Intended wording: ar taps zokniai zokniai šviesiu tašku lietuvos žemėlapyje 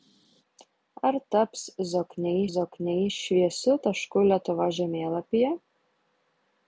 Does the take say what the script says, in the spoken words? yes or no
yes